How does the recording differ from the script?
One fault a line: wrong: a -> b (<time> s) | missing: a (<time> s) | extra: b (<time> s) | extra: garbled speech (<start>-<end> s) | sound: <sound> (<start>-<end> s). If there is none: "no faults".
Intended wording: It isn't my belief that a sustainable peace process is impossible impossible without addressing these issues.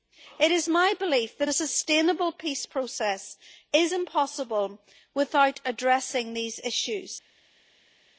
wrong: isn't -> is (0.5 s)
missing: impossible (4.8 s)